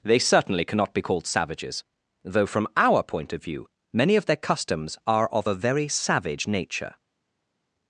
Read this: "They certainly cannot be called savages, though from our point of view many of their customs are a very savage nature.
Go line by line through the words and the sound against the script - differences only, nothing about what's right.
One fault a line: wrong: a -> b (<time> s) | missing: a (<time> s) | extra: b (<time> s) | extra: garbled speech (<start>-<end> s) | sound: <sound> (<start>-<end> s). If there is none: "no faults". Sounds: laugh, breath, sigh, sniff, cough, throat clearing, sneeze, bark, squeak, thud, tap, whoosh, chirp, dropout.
extra: of (5.3 s)